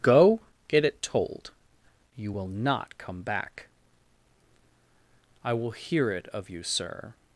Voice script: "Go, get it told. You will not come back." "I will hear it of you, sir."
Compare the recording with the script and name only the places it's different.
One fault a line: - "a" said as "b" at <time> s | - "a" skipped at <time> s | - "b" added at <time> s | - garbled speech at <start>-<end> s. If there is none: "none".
none